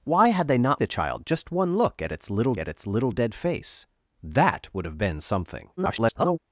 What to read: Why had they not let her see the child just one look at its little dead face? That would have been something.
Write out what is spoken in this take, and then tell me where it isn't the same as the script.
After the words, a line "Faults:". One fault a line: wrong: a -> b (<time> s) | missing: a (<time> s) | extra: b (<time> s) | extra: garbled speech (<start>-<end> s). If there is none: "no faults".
Why had they not the child just one look at its little at its little dead face? That would have been something. [garbled]
Faults:
missing: let her see (0.8 s)
extra: at its little (2.6 s)
extra: garbled speech (5.8-6.4 s)